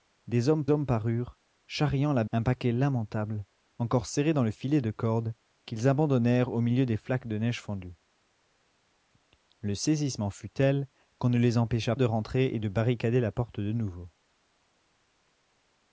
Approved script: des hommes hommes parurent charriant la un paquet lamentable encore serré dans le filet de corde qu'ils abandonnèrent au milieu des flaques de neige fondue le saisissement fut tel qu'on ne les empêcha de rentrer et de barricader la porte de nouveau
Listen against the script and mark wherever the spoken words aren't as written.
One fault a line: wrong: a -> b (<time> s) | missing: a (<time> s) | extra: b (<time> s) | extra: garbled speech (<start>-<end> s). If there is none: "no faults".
no faults